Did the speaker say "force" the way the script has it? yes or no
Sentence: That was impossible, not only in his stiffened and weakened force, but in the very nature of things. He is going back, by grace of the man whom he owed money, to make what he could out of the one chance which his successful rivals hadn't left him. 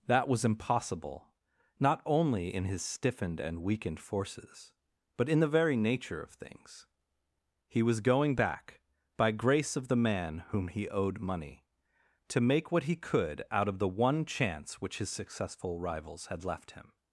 no